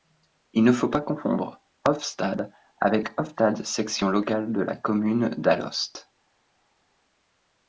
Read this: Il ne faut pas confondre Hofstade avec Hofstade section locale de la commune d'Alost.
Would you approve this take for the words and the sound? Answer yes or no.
yes